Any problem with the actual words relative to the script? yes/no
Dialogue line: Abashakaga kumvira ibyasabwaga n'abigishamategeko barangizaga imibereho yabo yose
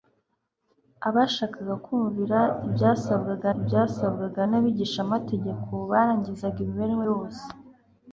yes